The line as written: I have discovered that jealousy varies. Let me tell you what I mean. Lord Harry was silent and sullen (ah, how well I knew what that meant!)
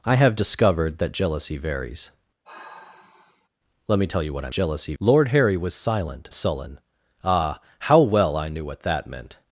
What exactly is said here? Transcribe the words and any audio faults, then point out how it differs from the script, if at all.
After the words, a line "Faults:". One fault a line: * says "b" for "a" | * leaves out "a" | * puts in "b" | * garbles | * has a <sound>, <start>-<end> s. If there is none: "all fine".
I have discovered that jealousy varies. Let me tell you what I jealousy. Lord Harry was silent sullen (ah, how well I knew what that meant!)
Faults:
* has a sigh, 2.4-3.5 s
* says "jealousy" for "mean"
* leaves out "and"